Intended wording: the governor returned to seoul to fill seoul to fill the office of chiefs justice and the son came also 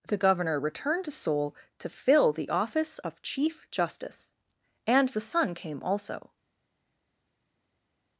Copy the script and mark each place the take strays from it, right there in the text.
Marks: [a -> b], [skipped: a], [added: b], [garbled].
the governor returned to seoul to fill [skipped: seoul to fill] the office of [chiefs -> chief] justice and the son came also